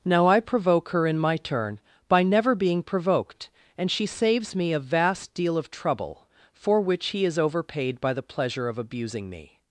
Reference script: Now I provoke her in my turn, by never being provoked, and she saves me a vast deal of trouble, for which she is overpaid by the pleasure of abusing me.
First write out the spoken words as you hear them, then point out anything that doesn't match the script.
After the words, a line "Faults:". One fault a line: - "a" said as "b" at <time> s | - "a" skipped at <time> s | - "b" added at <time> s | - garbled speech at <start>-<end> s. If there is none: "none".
Now I provoke her in my turn, by never being provoked, and she saves me a vast deal of trouble, for which he is overpaid by the pleasure of abusing me.
Faults:
- "she" said as "he" at 7.1 s